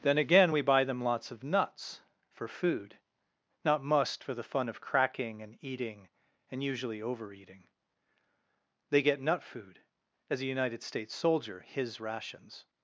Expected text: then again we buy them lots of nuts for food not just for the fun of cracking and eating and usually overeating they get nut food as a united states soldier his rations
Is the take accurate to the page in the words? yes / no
no